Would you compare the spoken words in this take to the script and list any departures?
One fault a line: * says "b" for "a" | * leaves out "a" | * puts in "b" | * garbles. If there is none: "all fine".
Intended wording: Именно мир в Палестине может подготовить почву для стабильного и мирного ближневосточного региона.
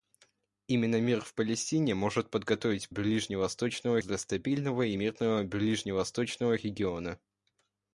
* says "ближневосточного" for "почву"